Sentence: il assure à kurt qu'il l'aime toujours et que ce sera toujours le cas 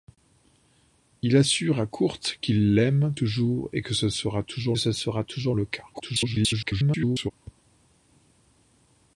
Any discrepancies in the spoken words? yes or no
yes